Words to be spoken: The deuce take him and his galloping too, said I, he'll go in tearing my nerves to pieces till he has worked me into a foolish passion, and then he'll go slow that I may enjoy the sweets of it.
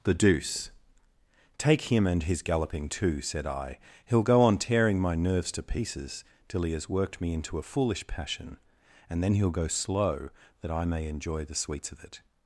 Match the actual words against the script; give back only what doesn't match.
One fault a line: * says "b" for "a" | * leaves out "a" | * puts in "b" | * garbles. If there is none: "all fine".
* says "on" for "in"